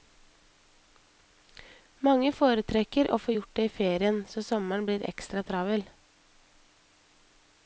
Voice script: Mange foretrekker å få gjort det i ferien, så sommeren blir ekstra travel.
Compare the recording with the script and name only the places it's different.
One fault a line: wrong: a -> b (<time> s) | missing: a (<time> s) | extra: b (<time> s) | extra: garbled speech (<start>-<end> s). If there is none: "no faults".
no faults